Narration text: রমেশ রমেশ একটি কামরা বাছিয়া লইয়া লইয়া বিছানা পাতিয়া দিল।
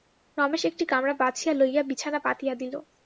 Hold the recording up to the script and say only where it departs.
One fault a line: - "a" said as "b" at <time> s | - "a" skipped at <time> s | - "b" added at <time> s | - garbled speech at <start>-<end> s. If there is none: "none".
- "রমেশ" skipped at 0.6 s
- "লইয়া" skipped at 1.8 s